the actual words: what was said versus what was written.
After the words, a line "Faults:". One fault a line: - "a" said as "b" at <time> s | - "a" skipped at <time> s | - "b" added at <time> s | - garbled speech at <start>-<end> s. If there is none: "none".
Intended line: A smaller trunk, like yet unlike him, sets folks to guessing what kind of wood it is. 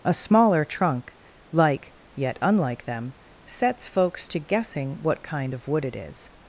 A smaller trunk, like yet unlike them, sets folks to guessing what kind of wood it is.
Faults:
- "him" said as "them" at 2.9 s